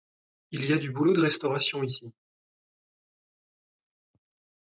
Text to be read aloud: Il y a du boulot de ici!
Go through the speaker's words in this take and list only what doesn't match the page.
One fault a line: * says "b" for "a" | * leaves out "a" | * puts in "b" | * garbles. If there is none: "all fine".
* puts in "restauration"